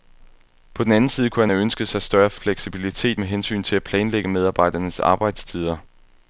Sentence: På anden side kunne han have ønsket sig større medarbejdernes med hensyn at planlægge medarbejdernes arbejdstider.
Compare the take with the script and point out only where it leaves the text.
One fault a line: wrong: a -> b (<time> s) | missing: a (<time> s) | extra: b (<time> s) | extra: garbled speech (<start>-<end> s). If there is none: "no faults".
extra: den (0.8 s)
wrong: medarbejdernes -> fleksibilitet (2.3 s)
extra: til (3.6 s)